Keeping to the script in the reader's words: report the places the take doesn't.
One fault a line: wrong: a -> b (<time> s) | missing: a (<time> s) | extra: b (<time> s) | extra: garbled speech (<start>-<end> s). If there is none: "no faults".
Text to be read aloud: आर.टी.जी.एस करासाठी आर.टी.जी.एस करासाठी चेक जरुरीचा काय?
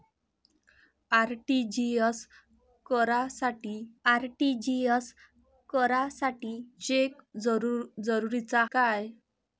no faults